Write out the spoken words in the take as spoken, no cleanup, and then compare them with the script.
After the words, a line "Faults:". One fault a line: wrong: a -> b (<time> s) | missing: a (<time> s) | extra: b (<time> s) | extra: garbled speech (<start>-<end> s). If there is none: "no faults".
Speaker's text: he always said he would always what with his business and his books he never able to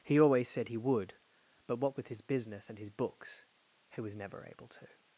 he always said he would but what with his business and his books he was never able to
Faults:
wrong: always -> but (1.7 s)
extra: was (4.0 s)